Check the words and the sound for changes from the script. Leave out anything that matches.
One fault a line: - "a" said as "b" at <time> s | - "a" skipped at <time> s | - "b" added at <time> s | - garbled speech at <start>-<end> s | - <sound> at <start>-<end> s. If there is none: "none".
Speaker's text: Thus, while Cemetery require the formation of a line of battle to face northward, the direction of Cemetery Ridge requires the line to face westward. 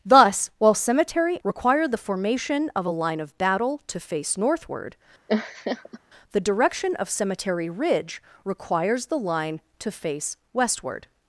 - laugh at 5.3-6.0 s